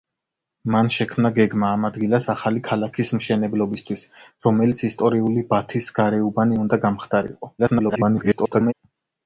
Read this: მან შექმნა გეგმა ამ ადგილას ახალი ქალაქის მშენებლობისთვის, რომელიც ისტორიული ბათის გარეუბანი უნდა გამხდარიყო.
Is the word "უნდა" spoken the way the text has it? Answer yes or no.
yes